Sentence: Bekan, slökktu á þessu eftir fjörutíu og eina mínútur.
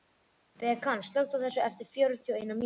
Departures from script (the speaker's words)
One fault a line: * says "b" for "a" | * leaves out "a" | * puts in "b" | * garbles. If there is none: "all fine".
all fine